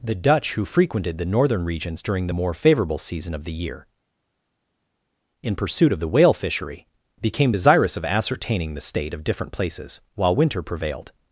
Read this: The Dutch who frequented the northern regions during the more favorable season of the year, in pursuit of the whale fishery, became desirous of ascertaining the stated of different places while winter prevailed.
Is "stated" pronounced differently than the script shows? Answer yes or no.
yes